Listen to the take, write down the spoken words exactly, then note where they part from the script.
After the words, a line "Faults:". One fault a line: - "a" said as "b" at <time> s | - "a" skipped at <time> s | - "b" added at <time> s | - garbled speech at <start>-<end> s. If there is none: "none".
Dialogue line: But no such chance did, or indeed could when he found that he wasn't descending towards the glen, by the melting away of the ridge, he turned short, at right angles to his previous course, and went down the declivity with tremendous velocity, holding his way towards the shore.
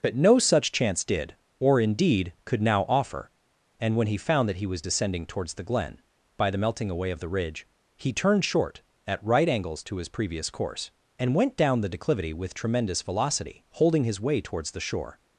But no such chance did, or indeed could now offer, and when he found that he was descending towards the glen, by the melting away of the ridge, he turned short, at right angles to his previous course, and went down the declivity with tremendous velocity, holding his way towards the shore.
Faults:
- "now offer and" added at 2.6 s
- "wasn't" said as "was" at 4.7 s